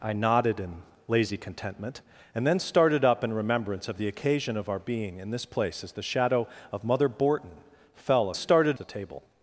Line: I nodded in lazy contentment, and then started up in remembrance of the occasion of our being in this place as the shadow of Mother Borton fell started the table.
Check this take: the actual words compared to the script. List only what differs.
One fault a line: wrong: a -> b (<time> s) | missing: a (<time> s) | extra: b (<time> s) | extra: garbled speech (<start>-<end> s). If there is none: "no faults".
no faults